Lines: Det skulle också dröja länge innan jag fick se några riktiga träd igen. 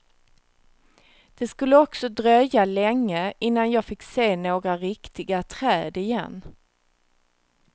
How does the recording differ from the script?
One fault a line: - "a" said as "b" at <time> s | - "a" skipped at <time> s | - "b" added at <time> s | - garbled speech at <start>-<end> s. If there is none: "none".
none